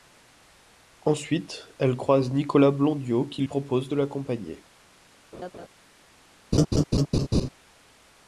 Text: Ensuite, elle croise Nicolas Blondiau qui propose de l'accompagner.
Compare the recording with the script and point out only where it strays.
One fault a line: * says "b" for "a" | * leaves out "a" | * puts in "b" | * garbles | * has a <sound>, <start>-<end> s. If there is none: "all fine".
* has a laugh, 5.3-5.7 s
* has a laugh, 6.5-7.5 s